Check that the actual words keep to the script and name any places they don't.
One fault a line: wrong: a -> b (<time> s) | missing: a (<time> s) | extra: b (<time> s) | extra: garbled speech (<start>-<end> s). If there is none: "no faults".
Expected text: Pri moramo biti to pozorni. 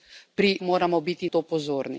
no faults